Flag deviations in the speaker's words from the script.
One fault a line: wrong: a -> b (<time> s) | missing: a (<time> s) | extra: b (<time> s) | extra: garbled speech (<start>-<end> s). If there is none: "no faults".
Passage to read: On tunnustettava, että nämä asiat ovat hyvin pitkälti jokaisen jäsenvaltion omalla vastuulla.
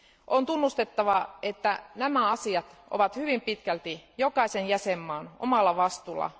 no faults